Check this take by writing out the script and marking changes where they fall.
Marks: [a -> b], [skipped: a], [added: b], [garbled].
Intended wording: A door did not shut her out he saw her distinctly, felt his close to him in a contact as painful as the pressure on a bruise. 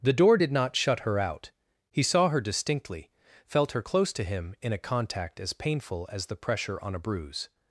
[A -> The] door did not shut her out he saw her distinctly, felt [his -> her] close to him in a contact as painful as the pressure on a bruise.